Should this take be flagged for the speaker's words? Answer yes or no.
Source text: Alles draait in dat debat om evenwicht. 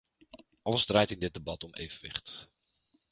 yes